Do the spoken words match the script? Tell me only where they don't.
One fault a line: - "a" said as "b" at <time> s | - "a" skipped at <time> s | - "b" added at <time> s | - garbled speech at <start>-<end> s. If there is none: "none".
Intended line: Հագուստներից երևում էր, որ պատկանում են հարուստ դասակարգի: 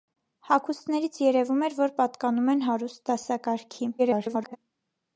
- garbled speech at 4.0-4.6 s